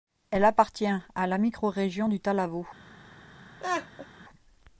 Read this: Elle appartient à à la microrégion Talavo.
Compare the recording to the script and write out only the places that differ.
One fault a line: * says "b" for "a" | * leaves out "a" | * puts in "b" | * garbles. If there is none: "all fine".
* leaves out "à"
* puts in "du"